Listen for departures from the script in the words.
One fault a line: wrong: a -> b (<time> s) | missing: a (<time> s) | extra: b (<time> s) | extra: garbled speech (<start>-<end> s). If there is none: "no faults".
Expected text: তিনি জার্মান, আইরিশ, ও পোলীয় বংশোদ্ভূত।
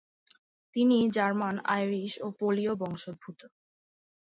no faults